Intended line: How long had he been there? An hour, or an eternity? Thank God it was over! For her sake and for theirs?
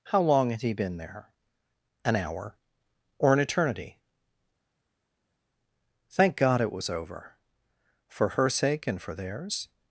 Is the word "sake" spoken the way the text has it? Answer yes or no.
yes